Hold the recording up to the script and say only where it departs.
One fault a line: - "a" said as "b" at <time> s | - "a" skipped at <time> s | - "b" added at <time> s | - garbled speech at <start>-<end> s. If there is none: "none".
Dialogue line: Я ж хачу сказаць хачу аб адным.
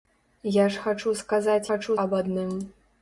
none